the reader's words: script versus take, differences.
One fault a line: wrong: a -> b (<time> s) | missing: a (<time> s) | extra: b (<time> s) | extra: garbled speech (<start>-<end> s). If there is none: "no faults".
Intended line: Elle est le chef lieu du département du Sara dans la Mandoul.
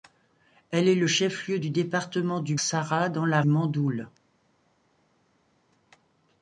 no faults